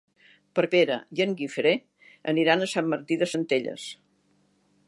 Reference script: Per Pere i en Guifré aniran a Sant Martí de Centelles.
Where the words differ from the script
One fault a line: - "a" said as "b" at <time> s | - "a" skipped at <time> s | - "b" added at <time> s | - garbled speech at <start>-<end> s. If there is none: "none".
none